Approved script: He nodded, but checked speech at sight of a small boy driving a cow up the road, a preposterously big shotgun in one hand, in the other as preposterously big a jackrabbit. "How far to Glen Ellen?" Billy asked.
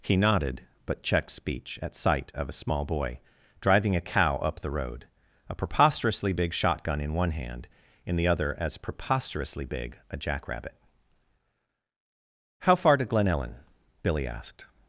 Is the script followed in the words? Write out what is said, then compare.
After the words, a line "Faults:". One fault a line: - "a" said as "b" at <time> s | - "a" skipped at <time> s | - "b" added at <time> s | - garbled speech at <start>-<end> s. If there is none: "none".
He nodded, but checked speech at sight of a small boy driving a cow up the road, a preposterously big shotgun in one hand, in the other as preposterously big a jackrabbit. "How far to Glen Ellen?" Billy asked.
Faults:
none